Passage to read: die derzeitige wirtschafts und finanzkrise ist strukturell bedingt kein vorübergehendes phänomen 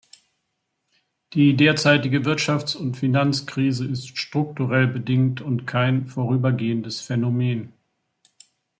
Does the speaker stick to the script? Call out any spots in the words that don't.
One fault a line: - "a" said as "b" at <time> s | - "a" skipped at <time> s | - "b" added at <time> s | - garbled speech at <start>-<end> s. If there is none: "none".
- "und" added at 5.4 s